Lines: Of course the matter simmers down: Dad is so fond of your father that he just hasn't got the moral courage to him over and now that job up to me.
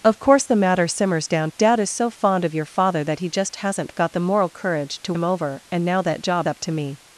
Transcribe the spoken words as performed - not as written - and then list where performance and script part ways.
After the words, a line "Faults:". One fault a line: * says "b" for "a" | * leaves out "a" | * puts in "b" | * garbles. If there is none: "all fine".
Of course the matter simmers down: Dad is so fond of your father that he just hasn't got the moral courage to him over and now that job up to me.
Faults:
all fine